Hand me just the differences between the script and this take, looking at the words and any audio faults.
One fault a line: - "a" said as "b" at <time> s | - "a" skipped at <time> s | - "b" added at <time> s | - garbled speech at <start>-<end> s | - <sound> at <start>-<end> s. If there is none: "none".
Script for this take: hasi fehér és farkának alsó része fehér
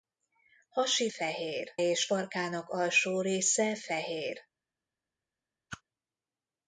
- whoosh at 5.7-5.8 s